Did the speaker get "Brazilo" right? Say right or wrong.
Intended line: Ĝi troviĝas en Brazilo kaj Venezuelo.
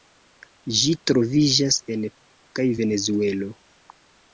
wrong